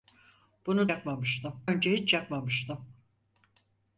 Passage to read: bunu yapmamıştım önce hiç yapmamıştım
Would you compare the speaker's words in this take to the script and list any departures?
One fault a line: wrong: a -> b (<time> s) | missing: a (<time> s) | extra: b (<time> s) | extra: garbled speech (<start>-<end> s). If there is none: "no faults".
no faults